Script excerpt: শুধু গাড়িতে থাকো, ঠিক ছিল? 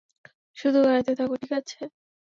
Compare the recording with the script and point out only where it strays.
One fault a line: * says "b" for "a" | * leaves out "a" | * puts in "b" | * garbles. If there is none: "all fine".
* says "আছে" for "ছিল"